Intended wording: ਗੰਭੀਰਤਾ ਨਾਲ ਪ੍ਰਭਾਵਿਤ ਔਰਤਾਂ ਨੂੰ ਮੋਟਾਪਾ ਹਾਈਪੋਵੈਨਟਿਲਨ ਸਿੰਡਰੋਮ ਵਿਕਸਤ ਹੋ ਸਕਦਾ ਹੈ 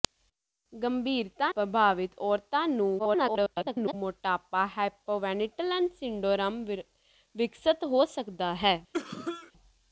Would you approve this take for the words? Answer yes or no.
no